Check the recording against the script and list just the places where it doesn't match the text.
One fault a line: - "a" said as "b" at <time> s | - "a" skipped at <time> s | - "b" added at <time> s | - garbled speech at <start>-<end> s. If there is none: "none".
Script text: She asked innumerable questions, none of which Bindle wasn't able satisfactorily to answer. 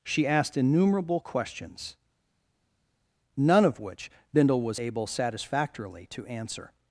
- "wasn't" said as "was" at 4.6 s